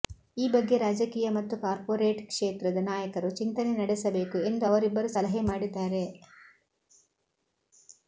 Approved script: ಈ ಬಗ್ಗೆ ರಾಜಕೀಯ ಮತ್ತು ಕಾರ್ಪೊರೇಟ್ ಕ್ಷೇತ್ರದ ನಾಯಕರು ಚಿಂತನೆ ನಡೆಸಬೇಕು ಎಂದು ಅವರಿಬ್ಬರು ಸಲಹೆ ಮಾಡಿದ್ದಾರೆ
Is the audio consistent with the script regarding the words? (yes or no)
yes